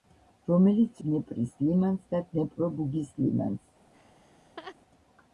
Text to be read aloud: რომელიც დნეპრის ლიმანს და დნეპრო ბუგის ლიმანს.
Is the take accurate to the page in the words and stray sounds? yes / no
no